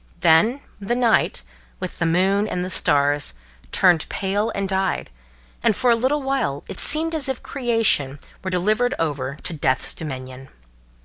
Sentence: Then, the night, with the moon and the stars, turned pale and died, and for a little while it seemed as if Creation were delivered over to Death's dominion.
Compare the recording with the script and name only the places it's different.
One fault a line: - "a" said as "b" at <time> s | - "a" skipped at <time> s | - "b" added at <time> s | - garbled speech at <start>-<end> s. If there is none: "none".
none